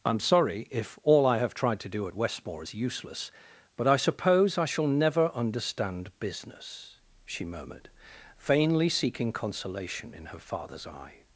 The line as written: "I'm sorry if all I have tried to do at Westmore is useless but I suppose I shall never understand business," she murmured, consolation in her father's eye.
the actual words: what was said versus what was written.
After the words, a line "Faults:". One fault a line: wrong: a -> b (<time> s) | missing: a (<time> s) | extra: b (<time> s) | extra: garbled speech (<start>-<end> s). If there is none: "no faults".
"I'm sorry if all I have tried to do at Westmore is useless but I suppose I shall never understand business," she murmured, vainly seeking consolation in her father's eye.
Faults:
extra: vainly seeking (8.4 s)